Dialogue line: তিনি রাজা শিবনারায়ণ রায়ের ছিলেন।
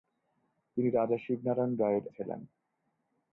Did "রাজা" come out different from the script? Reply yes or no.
no